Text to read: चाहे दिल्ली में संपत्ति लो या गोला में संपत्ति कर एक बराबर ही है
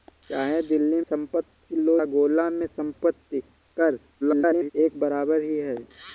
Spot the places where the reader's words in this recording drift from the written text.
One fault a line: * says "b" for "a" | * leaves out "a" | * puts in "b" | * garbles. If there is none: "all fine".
* leaves out "में"
* leaves out "या"
* garbles